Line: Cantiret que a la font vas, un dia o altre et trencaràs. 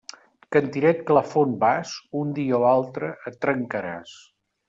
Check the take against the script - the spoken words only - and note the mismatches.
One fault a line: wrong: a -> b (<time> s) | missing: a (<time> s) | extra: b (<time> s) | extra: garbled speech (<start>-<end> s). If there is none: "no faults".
no faults